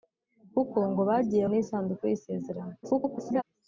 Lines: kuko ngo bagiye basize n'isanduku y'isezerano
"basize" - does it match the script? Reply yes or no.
no